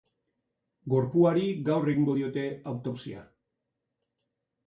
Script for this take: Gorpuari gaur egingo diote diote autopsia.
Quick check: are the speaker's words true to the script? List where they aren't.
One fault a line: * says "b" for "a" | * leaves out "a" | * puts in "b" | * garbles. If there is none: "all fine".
* leaves out "diote"